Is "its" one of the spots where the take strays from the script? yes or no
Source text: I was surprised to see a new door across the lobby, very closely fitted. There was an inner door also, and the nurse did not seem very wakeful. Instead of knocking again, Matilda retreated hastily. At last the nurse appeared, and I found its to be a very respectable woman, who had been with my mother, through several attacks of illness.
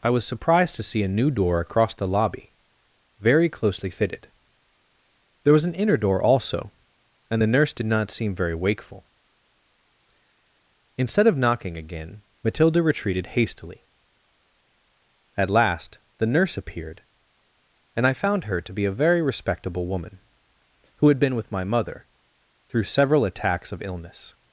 yes